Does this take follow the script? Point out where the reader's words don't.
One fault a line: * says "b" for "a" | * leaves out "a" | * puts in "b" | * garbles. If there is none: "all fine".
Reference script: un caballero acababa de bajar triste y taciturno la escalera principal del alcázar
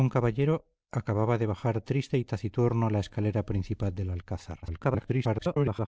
* garbles